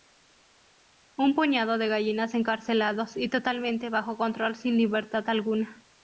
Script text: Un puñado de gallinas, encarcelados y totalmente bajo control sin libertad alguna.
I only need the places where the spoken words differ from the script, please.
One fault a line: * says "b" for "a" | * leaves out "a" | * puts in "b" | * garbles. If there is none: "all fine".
all fine